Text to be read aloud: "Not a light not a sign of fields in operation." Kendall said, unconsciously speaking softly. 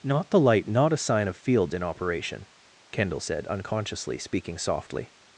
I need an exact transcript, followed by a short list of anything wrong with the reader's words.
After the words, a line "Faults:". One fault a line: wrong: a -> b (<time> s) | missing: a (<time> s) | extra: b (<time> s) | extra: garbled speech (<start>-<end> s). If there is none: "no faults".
"Not the light not a sign of fields in operation." Kendall said, unconsciously speaking softly.
Faults:
wrong: a -> the (0.3 s)